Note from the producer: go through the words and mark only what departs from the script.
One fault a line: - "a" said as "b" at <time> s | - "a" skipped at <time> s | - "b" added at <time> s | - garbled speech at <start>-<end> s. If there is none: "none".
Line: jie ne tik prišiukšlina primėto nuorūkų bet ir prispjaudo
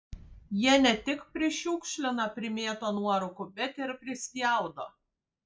none